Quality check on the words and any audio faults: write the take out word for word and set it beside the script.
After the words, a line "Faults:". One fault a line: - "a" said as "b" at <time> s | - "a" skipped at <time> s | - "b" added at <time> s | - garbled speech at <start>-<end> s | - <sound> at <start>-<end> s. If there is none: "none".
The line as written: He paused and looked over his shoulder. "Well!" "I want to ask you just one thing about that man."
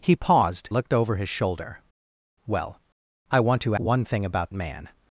He paused looked over his shoulder. "Well!" "I want to one thing about man."
Faults:
- "and" skipped at 0.7 s
- "ask you just" skipped at 3.7 s
- "that" skipped at 4.5 s